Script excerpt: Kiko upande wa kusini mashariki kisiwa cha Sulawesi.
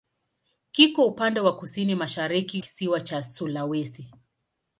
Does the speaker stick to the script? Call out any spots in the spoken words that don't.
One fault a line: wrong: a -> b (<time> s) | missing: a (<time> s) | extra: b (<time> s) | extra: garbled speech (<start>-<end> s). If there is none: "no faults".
no faults